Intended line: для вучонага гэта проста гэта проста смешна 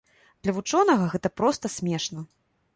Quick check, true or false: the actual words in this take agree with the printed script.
false